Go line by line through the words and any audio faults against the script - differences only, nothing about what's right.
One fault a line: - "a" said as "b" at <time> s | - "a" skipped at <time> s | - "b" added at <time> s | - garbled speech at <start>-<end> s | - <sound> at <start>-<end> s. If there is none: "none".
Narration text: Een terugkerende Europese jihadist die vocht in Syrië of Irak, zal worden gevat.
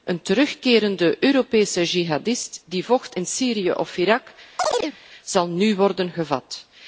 - chirp at 4.6-5.0 s
- "nu" added at 5.5 s